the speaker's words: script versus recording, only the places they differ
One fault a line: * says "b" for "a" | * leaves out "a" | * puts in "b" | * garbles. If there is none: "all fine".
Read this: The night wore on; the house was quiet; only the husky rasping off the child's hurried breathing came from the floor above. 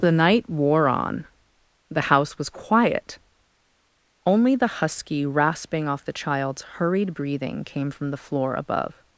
all fine